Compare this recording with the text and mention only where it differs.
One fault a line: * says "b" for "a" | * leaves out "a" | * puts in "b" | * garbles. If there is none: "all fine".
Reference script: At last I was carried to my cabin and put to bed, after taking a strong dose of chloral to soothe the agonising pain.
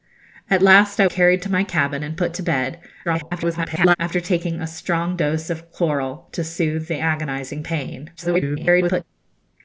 * leaves out "was"
* garbles
* garbles